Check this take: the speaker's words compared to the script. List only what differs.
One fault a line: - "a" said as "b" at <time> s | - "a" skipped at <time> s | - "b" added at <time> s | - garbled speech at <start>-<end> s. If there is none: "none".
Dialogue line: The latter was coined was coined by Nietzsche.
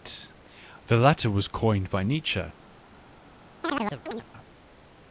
- "was coined" skipped at 1.9 s